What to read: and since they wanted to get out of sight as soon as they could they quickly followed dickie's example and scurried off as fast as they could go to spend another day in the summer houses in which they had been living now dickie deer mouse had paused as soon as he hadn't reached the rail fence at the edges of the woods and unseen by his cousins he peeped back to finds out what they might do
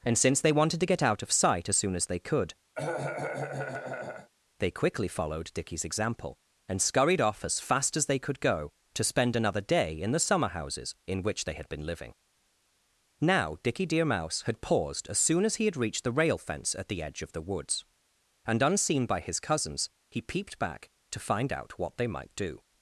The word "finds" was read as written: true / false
false